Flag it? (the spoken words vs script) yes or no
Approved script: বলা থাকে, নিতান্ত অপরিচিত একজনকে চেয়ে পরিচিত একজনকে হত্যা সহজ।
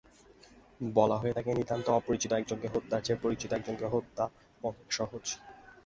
yes